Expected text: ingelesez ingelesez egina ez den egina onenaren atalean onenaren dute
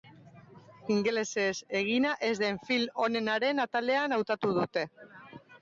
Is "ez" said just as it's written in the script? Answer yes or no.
yes